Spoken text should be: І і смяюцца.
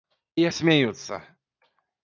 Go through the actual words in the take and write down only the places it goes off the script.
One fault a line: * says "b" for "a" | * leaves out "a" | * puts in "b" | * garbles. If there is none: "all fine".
all fine